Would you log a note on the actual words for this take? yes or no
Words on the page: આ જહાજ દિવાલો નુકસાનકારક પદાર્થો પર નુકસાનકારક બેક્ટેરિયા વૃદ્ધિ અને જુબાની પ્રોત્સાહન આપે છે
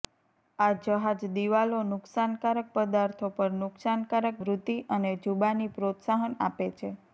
yes